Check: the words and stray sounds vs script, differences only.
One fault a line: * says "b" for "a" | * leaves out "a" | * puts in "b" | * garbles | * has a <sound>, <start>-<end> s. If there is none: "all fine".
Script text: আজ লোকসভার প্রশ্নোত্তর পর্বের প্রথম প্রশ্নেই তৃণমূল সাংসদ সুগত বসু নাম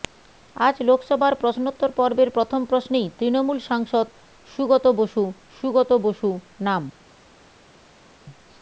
* puts in "সুগত বসু"